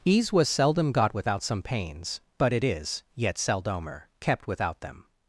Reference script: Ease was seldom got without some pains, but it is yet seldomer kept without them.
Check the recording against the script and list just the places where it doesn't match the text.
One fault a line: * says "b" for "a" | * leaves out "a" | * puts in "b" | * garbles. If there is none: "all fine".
all fine